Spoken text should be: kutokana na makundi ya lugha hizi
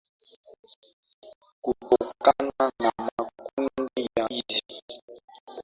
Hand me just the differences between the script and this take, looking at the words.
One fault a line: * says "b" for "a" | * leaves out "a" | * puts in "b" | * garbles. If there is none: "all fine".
* leaves out "lugha"